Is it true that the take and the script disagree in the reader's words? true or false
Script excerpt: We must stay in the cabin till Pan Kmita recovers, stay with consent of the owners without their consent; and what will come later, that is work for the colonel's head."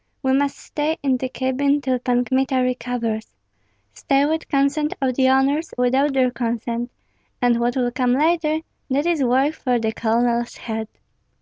false